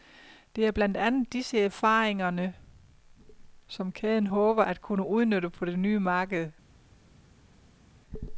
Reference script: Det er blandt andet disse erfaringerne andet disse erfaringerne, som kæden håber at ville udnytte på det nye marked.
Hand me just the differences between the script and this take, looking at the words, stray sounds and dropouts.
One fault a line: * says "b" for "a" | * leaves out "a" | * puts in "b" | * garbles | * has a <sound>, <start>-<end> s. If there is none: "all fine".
* leaves out "andet disse erfaringerne"
* says "kunne" for "ville"